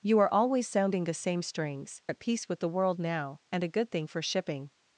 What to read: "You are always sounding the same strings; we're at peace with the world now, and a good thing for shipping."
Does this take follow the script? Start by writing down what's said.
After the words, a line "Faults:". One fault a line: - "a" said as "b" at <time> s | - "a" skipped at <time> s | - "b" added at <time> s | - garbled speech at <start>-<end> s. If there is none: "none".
"You are always sounding the same strings; at peace with the world now, and a good thing for shipping."
Faults:
- "we're" skipped at 2.0 s